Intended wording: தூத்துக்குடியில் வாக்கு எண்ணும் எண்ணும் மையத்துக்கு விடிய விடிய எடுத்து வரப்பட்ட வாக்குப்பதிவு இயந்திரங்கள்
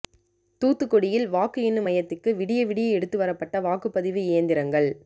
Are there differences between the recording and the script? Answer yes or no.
yes